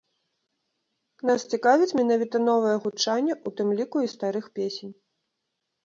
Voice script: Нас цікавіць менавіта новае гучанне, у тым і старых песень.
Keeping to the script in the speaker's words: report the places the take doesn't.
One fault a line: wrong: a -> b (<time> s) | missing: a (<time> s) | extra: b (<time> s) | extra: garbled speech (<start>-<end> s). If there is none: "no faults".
extra: ліку (3.8 s)